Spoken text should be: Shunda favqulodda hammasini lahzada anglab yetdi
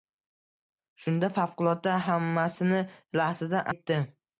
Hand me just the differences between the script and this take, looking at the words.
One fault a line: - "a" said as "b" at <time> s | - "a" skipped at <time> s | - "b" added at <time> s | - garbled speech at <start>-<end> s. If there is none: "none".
- "anglab" skipped at 3.7 s